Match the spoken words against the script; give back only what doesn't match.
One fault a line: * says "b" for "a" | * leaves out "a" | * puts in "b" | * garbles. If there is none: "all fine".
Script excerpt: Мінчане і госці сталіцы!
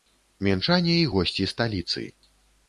all fine